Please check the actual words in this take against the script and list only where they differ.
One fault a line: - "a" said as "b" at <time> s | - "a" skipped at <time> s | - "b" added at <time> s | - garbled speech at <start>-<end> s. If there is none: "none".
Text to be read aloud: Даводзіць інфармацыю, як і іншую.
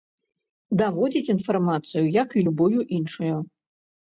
- "любую" added at 2.5 s